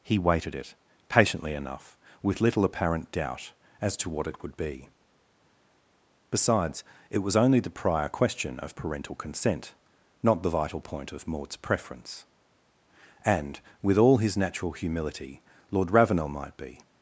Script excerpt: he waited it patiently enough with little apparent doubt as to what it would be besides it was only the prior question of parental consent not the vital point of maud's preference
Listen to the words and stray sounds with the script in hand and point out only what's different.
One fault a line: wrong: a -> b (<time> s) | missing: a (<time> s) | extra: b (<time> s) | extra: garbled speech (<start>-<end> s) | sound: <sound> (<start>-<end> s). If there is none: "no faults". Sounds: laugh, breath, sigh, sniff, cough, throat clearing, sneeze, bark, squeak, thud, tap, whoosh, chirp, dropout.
extra: and with all his natural humility lord ravenel might be (13.2 s)